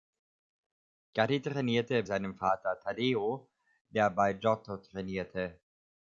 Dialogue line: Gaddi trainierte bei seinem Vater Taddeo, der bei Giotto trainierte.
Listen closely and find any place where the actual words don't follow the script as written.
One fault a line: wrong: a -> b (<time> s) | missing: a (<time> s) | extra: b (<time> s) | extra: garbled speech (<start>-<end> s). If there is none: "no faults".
missing: bei (2.0 s)